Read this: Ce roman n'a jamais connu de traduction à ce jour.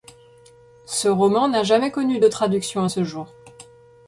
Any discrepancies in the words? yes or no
no